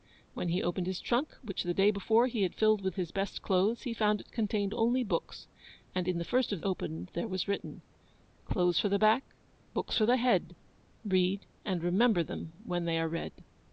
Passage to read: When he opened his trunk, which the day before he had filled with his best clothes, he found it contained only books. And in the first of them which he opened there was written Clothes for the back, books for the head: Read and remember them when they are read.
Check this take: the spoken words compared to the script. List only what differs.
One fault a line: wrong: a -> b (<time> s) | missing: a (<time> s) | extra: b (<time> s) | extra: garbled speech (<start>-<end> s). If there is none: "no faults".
missing: them which he (6.6 s)